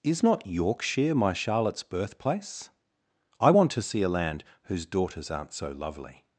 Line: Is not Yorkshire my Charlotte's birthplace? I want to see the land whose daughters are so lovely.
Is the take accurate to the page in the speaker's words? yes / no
no